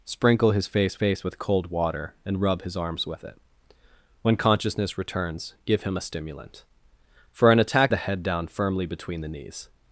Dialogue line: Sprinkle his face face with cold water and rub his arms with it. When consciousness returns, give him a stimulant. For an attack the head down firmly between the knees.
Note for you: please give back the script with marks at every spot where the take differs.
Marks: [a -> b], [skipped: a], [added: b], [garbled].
Sprinkle his face face with cold water and rub his arms with it. When consciousness returns, give him a stimulant. For an attack the head down firmly between the knees.